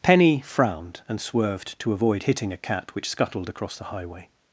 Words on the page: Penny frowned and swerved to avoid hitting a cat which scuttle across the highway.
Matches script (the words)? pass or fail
fail